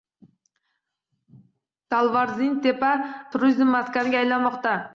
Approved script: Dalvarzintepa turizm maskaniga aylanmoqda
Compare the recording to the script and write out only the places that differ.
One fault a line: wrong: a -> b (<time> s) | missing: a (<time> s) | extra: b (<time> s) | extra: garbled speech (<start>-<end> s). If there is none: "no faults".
no faults